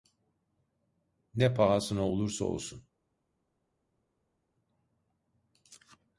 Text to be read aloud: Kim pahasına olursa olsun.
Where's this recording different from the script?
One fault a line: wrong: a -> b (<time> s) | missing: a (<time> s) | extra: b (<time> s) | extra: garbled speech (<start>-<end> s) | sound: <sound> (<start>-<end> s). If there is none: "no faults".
wrong: Kim -> Ne (1.4 s)